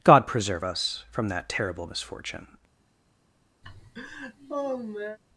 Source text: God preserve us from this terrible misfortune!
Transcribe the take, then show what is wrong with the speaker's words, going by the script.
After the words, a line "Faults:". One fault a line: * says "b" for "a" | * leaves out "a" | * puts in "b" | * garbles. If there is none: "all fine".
God preserve us from that terrible misfortune!
Faults:
* says "that" for "this"